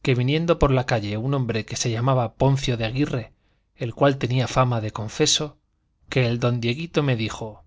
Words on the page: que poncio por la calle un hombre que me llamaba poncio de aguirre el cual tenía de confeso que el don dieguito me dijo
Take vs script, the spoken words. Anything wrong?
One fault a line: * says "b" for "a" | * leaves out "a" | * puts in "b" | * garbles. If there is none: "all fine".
* says "viniendo" for "poncio"
* says "se" for "me"
* puts in "fama"